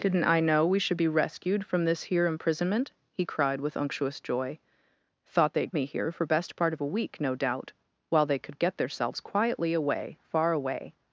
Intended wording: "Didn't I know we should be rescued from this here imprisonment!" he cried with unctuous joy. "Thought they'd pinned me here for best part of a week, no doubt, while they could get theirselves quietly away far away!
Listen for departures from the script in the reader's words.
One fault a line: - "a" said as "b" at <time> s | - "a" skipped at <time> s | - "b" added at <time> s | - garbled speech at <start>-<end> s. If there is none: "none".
- "pinned" skipped at 5.8 s